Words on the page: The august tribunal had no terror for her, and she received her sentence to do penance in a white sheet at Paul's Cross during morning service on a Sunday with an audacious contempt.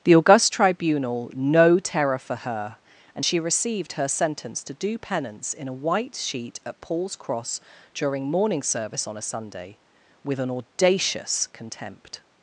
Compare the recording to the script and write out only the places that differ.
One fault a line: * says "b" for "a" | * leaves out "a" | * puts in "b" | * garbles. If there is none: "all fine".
* leaves out "had"